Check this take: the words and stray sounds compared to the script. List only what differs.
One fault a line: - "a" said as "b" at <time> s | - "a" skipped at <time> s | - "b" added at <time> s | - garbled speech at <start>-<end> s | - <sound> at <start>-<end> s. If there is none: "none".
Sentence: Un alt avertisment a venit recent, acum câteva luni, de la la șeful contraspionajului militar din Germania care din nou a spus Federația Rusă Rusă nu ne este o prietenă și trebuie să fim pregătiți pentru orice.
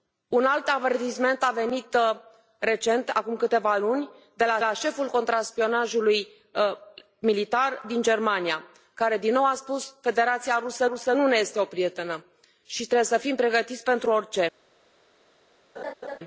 - laugh at 15.8-16.2 s